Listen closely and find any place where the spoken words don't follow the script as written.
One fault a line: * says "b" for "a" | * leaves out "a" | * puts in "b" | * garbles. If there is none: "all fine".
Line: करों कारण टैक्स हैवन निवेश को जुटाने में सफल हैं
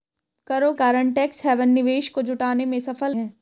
all fine